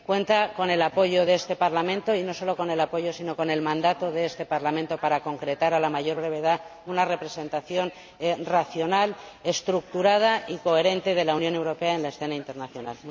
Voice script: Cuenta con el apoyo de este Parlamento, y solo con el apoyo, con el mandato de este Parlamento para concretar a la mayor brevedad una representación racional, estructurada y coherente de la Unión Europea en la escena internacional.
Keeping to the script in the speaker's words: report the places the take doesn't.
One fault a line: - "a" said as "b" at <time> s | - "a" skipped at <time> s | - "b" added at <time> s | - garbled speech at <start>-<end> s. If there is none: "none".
- "no" added at 2.2 s
- "sino" added at 3.1 s